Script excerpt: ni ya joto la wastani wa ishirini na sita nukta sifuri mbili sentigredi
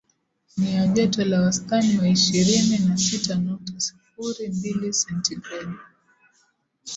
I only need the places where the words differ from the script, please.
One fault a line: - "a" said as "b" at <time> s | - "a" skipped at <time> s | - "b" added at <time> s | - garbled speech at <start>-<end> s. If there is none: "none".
none